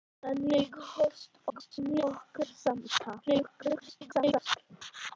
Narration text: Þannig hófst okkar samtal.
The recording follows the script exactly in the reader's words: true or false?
false